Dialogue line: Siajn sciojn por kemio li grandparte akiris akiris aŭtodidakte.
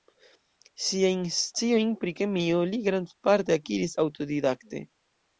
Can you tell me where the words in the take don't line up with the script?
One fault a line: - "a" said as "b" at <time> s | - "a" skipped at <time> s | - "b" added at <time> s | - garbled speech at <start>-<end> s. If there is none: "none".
- "por" said as "pri" at 2.0 s
- "akiris" skipped at 3.9 s